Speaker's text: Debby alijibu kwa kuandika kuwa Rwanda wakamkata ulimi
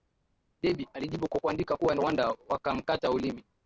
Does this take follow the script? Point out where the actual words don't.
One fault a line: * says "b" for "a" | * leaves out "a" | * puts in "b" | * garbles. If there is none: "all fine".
all fine